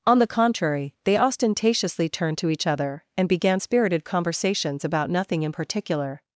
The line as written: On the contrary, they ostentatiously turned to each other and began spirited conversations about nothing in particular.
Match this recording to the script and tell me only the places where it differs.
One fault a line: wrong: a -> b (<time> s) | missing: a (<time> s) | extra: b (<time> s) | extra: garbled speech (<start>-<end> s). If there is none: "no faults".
no faults